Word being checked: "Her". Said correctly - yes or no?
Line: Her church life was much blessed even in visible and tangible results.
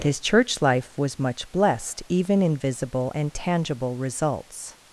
no